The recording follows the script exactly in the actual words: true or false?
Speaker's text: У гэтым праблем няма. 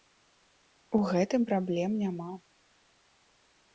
true